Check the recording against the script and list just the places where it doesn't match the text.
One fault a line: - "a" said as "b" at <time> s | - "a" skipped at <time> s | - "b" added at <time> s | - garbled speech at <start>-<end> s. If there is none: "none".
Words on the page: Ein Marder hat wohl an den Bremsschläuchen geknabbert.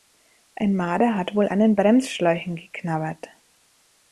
none